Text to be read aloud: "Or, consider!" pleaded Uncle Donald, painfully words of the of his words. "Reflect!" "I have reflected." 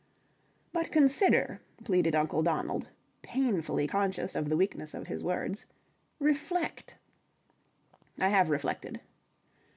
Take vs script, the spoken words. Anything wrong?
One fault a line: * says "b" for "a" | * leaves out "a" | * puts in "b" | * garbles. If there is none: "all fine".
* says "But" for "Or"
* says "conscious" for "words"
* puts in "weakness"